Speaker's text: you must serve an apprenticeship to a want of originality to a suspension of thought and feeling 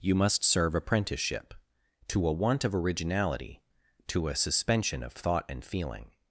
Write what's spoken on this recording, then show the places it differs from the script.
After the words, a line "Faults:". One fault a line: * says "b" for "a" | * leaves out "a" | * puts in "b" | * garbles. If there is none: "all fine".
you must serve apprenticeship to a want of originality to a suspension of thought and feeling
Faults:
* leaves out "an"